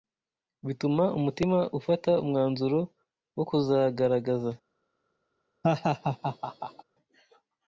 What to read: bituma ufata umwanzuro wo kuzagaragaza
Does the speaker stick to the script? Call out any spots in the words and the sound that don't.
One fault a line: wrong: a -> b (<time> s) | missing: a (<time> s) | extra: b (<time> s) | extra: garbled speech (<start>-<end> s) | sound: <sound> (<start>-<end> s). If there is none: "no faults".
extra: umutima (1.2 s)
sound: laugh (5.6-6.8 s)